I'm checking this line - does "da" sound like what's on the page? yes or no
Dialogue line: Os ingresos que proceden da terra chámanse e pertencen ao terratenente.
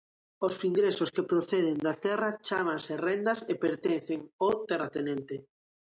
yes